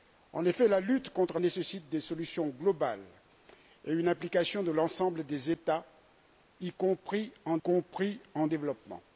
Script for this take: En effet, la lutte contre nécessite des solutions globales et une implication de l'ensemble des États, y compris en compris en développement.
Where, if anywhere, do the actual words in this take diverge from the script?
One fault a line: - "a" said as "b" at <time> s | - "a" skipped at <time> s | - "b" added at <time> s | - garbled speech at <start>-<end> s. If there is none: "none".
none